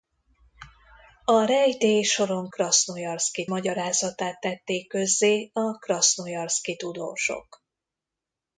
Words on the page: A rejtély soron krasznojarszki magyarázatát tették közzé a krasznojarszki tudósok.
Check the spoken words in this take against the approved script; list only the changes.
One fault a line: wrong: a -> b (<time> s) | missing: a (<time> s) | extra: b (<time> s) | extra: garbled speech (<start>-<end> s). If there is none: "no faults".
no faults